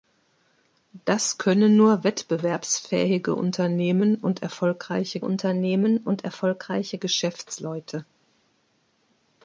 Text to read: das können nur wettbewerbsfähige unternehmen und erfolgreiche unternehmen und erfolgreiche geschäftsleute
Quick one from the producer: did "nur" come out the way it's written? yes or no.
yes